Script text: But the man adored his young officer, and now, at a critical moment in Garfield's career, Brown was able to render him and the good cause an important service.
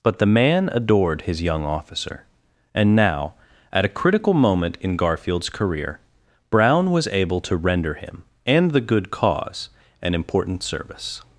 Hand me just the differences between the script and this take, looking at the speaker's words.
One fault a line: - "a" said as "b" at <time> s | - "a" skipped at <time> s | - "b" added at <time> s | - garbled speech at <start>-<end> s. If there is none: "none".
none